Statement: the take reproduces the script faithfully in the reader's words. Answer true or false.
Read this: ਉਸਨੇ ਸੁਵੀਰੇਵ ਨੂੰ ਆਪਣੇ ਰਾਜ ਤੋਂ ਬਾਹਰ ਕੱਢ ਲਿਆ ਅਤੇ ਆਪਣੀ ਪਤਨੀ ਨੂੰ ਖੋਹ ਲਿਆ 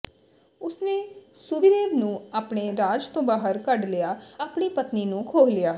false